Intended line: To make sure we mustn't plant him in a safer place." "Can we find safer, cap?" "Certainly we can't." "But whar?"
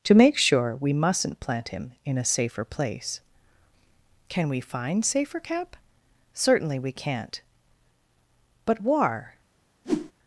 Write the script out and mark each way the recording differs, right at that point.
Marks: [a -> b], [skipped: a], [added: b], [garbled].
To make sure we mustn't plant him in a safer place." "Can we find safer, cap?" "Certainly we can't." "But whar?"